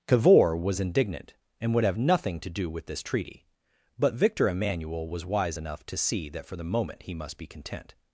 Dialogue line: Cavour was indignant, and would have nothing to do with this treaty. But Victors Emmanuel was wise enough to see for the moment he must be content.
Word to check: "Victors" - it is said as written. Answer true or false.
false